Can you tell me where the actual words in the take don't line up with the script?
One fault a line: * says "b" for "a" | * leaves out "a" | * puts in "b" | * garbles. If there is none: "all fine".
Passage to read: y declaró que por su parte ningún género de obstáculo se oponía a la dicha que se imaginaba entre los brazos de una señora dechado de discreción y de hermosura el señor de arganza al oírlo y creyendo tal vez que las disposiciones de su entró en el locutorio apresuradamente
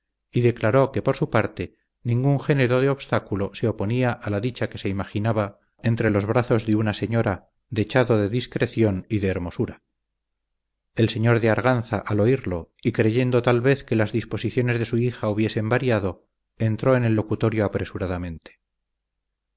* puts in "hija hubiesen variado"